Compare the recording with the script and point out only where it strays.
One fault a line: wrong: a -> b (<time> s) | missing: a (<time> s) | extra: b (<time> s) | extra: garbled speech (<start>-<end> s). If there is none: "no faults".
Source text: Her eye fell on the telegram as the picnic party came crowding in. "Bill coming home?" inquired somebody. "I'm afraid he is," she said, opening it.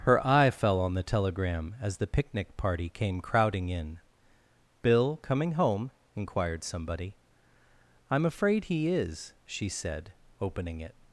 no faults